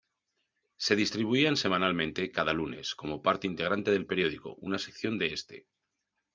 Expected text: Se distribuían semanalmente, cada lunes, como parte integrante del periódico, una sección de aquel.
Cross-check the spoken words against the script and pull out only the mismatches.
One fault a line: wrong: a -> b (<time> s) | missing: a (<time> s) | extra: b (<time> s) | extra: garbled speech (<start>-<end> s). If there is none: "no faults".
wrong: aquel -> este (5.3 s)